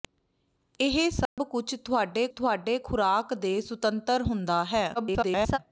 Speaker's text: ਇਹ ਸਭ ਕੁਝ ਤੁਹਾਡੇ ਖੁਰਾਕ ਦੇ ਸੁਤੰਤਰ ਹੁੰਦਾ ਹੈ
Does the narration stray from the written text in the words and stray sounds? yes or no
yes